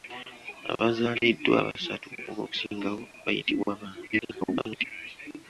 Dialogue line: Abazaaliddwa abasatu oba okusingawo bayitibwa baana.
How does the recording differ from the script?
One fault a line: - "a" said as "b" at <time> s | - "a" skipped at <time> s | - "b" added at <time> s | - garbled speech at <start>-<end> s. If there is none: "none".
- garbled speech at 4.1-4.9 s